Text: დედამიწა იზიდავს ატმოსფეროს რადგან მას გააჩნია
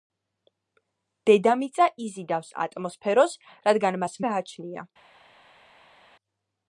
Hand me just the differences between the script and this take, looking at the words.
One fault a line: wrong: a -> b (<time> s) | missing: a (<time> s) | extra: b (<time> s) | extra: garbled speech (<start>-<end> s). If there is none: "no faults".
no faults